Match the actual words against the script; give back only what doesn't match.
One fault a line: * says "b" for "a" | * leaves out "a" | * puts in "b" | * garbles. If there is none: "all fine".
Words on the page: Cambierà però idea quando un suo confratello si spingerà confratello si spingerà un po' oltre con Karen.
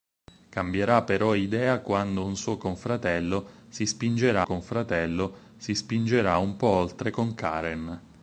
all fine